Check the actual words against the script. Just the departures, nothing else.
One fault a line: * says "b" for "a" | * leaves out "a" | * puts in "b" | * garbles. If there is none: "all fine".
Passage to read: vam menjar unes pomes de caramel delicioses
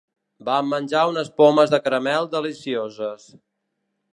all fine